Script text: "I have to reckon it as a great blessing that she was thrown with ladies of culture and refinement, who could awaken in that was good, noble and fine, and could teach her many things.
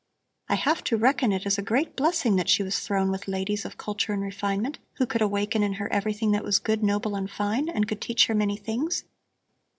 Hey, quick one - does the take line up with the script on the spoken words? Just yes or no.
no